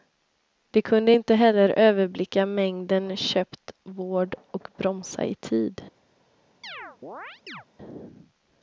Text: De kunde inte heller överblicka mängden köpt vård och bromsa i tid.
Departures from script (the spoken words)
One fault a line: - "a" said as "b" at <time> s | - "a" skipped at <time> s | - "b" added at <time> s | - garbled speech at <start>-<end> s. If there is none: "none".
none